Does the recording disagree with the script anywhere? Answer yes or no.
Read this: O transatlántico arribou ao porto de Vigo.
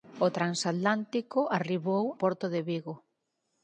yes